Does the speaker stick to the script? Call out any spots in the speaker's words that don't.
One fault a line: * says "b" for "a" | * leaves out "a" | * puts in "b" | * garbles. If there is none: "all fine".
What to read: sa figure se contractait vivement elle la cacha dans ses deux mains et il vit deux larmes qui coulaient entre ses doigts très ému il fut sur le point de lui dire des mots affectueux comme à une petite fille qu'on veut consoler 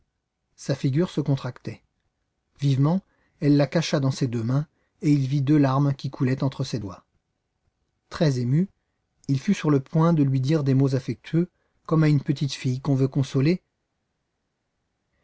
all fine